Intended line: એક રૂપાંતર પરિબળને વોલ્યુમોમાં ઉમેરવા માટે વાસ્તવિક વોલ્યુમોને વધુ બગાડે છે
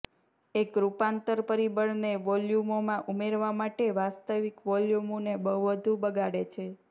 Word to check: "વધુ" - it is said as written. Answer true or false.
true